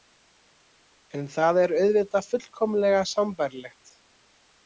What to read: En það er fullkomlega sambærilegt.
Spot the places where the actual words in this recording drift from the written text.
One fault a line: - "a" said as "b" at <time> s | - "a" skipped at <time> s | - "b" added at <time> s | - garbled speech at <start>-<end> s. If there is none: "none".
- "auðvitað" added at 1.8 s